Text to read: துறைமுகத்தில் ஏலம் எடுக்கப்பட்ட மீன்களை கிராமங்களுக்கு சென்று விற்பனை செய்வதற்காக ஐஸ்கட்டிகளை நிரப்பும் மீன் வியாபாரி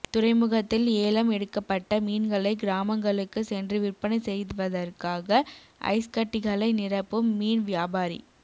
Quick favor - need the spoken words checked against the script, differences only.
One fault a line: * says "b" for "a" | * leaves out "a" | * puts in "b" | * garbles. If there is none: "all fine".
all fine